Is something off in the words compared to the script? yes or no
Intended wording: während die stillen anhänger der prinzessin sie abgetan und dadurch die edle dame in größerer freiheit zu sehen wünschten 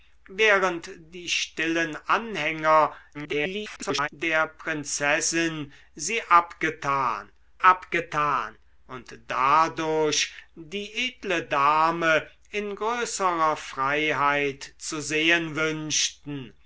yes